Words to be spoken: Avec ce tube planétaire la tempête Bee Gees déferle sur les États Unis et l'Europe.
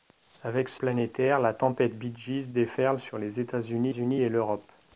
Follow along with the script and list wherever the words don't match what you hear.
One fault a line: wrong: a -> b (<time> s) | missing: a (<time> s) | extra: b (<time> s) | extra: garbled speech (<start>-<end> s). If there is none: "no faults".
missing: tube (0.8 s)
extra: Unis (3.9 s)